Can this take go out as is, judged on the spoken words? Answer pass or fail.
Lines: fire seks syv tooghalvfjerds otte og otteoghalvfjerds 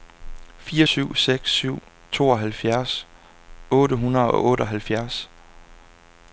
fail